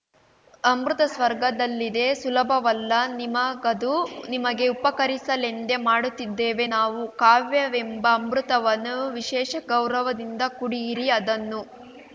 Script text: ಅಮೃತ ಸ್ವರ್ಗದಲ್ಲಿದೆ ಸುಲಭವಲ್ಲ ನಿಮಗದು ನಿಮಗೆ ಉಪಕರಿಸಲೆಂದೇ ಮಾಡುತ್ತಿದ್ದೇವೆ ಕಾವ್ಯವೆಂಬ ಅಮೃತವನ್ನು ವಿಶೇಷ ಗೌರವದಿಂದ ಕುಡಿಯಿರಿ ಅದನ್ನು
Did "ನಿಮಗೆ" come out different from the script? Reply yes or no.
no